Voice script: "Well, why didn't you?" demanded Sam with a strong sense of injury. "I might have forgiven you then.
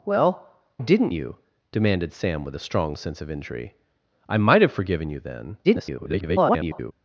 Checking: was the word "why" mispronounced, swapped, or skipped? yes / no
yes